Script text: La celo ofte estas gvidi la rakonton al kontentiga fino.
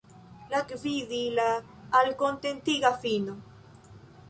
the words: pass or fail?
fail